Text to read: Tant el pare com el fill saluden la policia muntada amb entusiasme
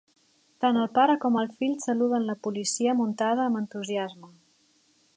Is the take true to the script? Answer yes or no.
yes